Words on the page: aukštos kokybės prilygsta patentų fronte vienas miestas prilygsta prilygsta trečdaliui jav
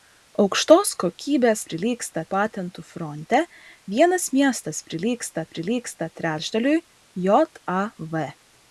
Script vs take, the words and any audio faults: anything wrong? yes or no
no